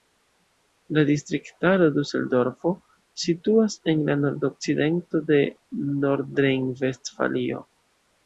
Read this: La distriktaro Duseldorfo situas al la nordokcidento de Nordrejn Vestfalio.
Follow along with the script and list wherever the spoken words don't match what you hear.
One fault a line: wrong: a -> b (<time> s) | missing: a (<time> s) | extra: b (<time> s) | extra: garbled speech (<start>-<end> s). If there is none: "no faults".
wrong: al -> en (3.9 s)